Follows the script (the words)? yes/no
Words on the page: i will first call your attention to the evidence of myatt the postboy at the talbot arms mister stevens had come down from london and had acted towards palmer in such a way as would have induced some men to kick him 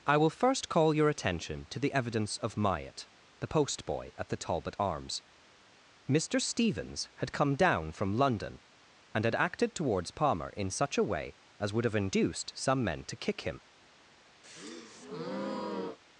yes